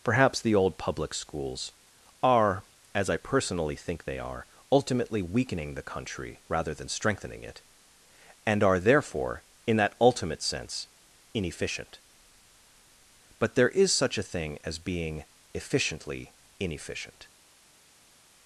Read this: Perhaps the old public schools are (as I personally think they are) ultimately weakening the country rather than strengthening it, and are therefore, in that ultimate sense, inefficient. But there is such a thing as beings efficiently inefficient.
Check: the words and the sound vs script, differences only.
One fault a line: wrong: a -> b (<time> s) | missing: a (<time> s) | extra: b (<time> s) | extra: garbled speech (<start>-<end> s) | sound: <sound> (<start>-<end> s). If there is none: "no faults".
wrong: beings -> being (14.8 s)